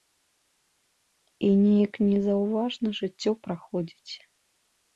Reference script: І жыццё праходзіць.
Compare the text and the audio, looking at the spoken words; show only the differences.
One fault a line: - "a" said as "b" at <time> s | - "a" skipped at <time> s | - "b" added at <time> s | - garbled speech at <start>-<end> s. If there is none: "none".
- "неяк незаўважна" added at 1.6 s